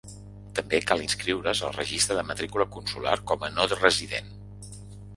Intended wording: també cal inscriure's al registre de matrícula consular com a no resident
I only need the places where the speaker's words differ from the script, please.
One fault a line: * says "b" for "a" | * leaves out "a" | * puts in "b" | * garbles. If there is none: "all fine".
all fine